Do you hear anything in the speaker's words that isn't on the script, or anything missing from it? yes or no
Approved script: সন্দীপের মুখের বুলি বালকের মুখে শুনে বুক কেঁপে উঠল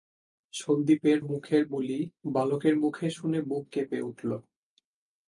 no